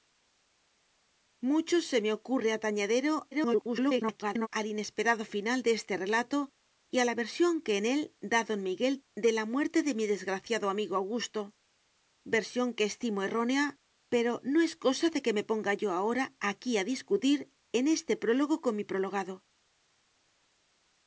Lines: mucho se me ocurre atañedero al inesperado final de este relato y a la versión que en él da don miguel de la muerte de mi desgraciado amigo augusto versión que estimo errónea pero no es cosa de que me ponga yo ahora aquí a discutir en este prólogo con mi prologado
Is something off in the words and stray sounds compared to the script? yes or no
yes